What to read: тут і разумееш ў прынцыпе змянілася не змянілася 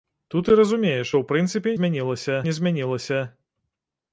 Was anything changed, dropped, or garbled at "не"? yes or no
no